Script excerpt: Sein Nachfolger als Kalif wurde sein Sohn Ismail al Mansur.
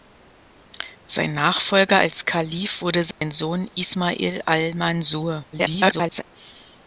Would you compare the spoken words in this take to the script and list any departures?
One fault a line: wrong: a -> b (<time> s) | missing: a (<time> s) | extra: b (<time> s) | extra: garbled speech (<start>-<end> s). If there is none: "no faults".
extra: garbled speech (5.5-6.2 s)